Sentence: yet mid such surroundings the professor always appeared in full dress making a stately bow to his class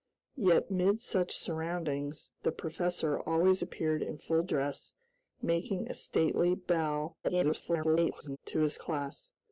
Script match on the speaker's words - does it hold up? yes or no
no